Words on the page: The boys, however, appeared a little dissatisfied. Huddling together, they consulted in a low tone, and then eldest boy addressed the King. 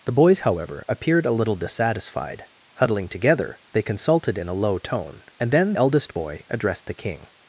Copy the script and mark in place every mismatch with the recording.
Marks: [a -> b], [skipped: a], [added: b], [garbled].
The boys, however, appeared a little dissatisfied. Huddling together, they consulted in a low tone, and then eldest boy addressed the King.